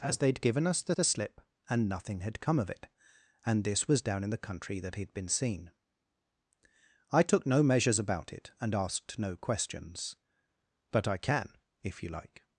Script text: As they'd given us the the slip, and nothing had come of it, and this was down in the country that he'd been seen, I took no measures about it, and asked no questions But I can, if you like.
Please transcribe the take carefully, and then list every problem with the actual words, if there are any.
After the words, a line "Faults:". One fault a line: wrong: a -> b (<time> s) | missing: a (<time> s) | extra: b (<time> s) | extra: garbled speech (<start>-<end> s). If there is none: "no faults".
As they'd given us the the slip, and nothing had come of it, and this was down in the country that he'd been seen, I took no measures about it, and asked no questions But I can, if you like.
Faults:
no faults